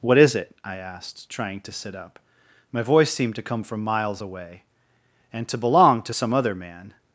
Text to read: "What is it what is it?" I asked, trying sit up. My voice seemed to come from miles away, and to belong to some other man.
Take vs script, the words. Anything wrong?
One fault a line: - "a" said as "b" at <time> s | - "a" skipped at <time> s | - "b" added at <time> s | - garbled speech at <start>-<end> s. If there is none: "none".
- "what is it" skipped at 0.6 s
- "to" added at 1.6 s